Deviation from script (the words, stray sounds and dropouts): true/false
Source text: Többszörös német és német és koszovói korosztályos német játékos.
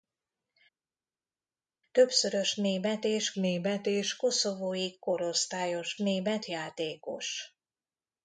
false